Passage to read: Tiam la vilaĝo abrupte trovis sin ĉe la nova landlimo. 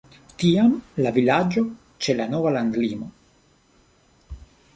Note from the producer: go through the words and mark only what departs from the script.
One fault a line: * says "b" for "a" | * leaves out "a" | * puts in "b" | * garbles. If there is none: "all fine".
* leaves out "abrupte trovis sin"